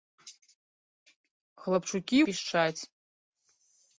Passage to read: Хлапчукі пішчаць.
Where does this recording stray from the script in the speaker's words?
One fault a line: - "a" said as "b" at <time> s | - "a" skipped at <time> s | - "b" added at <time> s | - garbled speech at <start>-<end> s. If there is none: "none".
none